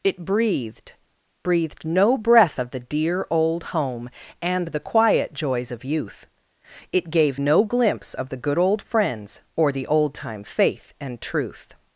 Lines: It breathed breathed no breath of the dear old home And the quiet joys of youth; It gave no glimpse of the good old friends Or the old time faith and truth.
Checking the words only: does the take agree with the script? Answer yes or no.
yes